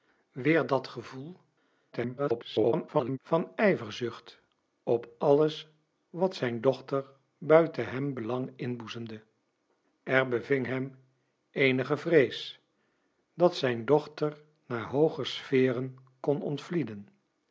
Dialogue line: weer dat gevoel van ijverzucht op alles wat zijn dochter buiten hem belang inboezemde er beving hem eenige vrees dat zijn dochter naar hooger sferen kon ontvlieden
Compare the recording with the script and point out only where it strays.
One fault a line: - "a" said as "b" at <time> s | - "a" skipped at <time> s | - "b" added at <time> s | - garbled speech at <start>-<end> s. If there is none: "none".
- garbled speech at 1.9-3.2 s